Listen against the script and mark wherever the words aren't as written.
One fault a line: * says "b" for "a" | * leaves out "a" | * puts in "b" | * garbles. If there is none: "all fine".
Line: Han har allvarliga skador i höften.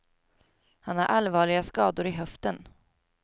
all fine